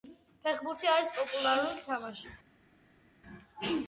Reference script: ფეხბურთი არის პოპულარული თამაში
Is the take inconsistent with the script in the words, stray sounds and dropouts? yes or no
no